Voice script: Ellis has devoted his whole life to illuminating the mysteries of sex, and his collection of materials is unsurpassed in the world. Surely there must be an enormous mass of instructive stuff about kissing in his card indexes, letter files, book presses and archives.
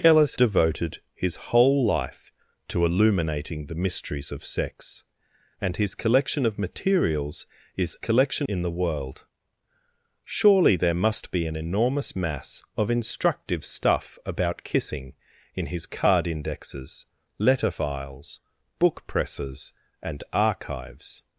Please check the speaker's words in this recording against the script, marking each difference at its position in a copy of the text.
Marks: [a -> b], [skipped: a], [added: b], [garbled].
Ellis [skipped: has] devoted his whole life to illuminating the mysteries of sex, and his collection of materials is [unsurpassed -> collection] in the world. Surely there must be an enormous mass of instructive stuff about kissing in his card indexes, letter files, book presses and archives.